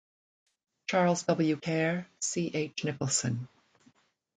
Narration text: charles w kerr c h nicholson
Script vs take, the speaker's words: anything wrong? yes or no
no